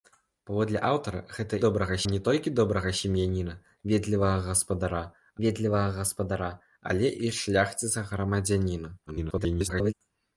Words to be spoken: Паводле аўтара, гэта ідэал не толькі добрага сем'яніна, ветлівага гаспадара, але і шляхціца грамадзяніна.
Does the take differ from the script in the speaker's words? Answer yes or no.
yes